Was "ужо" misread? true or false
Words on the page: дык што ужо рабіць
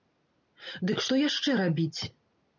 true